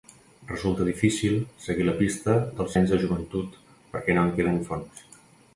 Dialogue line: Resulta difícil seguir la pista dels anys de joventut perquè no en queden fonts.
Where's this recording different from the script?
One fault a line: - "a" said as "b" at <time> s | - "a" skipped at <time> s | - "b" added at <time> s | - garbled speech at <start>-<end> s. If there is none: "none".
none